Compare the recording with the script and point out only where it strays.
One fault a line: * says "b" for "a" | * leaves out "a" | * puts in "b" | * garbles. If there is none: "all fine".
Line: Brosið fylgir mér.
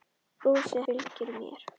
all fine